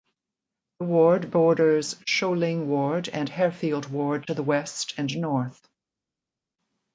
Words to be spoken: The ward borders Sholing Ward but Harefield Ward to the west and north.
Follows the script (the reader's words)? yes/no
no